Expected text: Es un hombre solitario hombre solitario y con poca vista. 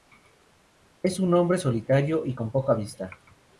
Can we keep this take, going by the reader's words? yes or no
no